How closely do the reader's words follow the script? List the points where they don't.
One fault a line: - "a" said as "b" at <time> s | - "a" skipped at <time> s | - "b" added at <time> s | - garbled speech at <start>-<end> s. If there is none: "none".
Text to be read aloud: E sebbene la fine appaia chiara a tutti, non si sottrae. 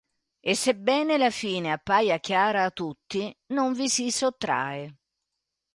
- "vi" added at 3.7 s